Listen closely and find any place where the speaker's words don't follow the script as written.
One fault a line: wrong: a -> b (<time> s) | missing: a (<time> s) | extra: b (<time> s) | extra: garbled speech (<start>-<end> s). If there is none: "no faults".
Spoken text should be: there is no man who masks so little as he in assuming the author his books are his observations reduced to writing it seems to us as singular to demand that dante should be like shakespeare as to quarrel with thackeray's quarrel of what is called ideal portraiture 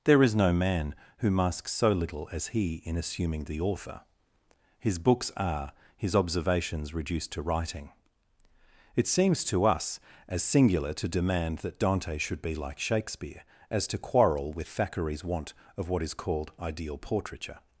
wrong: quarrel -> want (15.2 s)